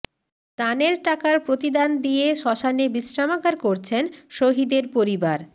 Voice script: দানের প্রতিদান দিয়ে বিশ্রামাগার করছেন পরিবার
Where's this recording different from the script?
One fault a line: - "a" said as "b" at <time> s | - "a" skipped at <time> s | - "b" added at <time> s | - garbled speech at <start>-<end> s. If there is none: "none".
- "টাকার" added at 1.0 s
- "শ্মশানে" added at 2.4 s
- "শহিদের" added at 4.3 s